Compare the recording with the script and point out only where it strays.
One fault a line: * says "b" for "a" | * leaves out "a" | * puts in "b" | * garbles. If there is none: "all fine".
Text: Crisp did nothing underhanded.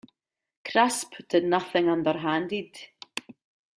all fine